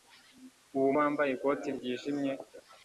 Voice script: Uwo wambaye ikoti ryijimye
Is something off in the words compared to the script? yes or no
no